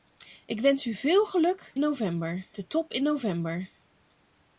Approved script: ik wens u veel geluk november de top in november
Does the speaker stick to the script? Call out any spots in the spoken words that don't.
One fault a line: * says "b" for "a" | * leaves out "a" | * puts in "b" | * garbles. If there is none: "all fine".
all fine